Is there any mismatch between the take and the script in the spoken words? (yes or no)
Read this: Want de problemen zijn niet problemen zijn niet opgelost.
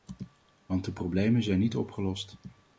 yes